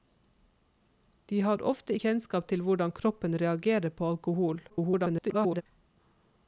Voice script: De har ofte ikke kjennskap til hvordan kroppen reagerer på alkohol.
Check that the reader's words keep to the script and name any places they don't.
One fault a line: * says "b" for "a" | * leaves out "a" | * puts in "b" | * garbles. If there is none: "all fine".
* leaves out "ikke"
* garbles